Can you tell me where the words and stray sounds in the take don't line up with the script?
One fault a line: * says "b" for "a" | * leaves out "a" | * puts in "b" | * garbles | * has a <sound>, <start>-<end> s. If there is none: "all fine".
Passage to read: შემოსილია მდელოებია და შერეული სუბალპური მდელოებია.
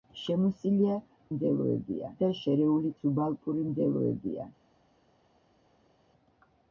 all fine